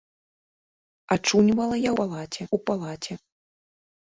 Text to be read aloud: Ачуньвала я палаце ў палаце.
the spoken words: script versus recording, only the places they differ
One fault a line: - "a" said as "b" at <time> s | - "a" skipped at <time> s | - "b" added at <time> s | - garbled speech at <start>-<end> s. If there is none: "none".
none